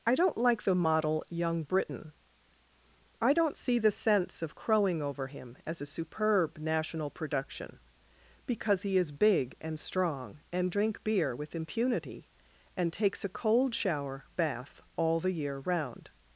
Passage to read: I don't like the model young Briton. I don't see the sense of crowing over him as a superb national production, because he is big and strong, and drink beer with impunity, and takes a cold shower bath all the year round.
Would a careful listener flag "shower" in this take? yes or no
no